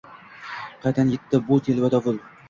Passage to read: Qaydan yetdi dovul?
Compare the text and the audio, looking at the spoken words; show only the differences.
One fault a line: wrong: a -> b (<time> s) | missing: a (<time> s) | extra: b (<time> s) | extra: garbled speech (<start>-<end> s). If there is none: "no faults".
extra: bu telba (1.5 s)